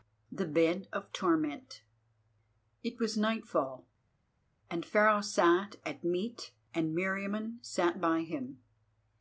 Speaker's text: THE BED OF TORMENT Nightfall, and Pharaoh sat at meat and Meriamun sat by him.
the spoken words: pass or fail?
fail